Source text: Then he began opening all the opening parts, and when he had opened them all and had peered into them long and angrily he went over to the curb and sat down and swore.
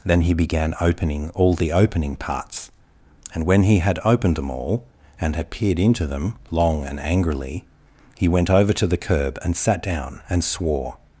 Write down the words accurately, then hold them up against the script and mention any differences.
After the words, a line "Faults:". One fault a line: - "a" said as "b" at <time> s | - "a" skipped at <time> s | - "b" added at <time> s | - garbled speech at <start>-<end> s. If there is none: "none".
Then he began opening all the opening parts, and when he had opened them all and had peered into them long and angrily he went over to the curb and sat down and swore.
Faults:
none